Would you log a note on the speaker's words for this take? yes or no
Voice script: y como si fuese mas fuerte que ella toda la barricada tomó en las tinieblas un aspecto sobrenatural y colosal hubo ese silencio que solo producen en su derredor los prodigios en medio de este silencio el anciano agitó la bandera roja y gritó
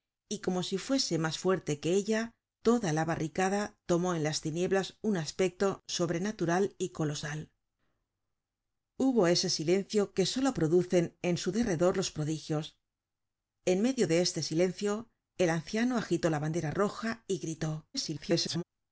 yes